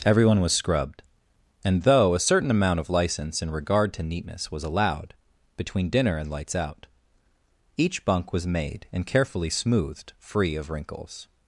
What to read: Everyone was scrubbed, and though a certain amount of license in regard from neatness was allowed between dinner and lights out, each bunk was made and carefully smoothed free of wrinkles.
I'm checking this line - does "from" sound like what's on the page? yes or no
no